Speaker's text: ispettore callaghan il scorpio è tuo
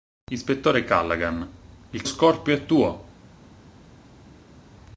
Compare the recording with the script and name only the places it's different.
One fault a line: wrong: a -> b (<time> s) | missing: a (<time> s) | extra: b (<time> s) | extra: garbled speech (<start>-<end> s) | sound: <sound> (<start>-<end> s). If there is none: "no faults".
no faults